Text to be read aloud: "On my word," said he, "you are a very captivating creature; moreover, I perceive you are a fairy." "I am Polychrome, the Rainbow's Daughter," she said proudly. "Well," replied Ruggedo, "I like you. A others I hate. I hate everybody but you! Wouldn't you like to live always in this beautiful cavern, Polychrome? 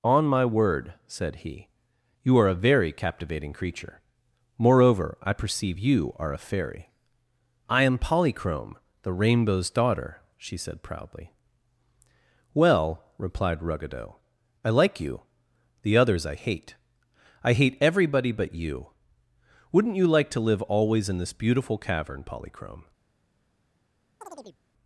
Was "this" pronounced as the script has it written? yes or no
yes